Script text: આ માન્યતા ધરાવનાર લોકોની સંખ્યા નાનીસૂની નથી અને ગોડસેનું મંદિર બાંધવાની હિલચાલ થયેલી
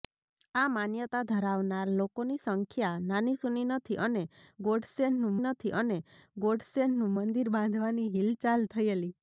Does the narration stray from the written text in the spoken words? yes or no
yes